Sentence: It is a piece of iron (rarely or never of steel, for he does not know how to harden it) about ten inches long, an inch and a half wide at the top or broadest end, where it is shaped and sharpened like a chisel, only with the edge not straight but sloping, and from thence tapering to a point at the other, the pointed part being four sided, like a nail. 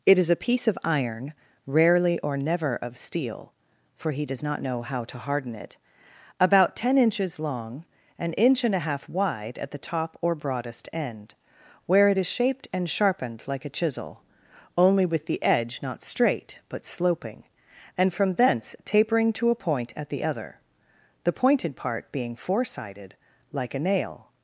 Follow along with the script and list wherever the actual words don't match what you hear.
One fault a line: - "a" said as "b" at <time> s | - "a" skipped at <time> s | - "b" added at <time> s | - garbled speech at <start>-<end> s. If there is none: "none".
none